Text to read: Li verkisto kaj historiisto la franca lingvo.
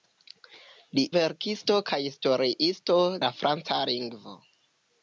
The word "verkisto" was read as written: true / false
true